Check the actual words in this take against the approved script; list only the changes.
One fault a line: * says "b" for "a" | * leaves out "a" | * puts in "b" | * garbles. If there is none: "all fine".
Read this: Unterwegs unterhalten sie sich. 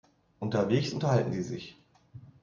all fine